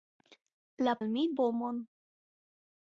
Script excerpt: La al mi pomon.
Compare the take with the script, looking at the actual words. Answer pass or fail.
pass